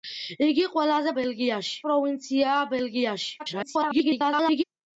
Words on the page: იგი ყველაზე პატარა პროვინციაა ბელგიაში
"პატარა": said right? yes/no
no